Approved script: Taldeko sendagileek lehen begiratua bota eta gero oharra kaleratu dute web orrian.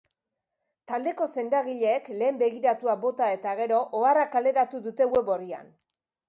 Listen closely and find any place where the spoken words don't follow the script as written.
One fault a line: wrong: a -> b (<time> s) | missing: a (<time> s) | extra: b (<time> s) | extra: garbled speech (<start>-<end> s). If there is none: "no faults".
no faults